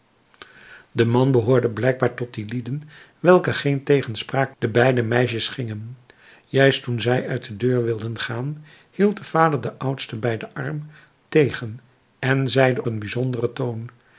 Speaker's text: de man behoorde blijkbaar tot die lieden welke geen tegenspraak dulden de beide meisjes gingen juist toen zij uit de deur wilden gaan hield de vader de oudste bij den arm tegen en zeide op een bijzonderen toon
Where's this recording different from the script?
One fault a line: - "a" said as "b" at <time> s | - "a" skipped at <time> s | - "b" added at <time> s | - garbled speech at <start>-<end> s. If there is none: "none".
- "dulden" skipped at 4.5 s
- "op" skipped at 12.8 s